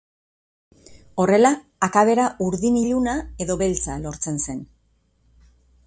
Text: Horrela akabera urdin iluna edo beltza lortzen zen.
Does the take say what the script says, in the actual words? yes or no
yes